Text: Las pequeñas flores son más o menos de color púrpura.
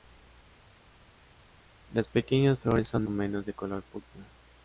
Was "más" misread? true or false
true